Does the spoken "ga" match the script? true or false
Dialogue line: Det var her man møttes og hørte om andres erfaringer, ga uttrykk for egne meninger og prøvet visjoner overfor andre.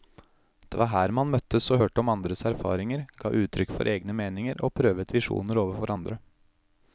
true